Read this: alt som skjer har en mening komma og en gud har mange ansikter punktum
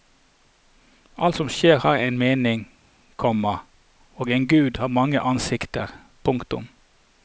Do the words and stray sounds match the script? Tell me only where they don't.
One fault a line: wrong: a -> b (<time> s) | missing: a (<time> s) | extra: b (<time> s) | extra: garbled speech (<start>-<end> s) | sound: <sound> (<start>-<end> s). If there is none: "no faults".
no faults